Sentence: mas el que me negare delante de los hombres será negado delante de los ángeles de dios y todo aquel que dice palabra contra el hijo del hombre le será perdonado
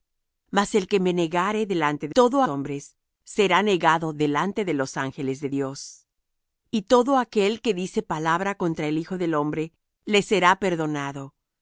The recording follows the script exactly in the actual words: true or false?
false